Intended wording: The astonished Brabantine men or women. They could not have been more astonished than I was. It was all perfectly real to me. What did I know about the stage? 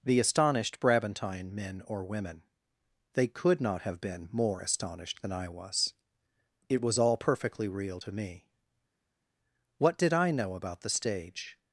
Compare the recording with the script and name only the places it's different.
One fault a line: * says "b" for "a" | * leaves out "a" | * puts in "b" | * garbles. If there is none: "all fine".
all fine